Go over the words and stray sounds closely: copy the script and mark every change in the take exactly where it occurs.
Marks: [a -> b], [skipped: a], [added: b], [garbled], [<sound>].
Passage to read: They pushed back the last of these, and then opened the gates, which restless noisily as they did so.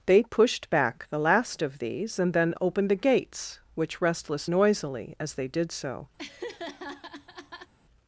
They pushed back the last of these, and then opened the gates, which restless noisily as they did so. [laugh]